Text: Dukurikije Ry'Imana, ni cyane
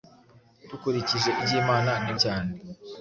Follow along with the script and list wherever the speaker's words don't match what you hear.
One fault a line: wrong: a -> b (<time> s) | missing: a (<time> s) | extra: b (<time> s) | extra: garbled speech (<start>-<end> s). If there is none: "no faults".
no faults